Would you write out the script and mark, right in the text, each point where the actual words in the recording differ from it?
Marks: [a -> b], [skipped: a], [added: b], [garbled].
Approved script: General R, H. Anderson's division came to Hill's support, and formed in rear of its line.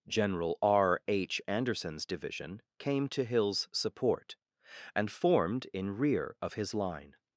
General R, H. Anderson's division came to Hill's support, and formed in rear of [its -> his] line.